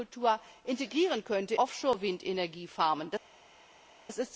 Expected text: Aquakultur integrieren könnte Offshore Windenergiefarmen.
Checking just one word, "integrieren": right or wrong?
right